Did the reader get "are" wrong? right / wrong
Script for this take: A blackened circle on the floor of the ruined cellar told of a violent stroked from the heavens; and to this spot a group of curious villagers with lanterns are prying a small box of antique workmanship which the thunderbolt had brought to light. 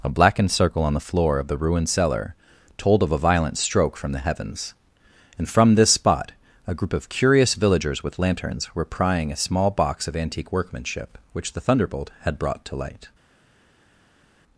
wrong